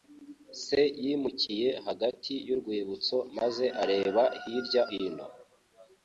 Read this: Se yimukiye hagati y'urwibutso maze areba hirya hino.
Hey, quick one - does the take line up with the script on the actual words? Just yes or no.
yes